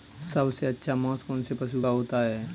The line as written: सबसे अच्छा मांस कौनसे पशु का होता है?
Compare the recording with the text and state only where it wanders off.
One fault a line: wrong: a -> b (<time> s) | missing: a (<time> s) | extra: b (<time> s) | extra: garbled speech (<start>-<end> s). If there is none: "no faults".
no faults